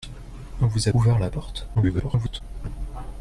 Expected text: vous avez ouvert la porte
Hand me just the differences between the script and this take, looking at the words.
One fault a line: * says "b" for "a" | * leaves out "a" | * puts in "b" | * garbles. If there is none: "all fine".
* leaves out "avez"
* garbles